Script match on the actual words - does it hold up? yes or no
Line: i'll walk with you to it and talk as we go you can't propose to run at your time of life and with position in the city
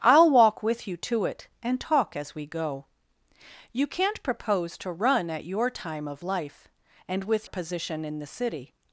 yes